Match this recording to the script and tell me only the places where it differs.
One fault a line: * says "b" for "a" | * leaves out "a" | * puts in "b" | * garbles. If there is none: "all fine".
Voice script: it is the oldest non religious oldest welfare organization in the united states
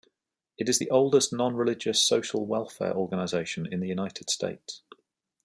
* says "social" for "oldest"